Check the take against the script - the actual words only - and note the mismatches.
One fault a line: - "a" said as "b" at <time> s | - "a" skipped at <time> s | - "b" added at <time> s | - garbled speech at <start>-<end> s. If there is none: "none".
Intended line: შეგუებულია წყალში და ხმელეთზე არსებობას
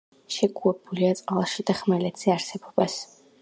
none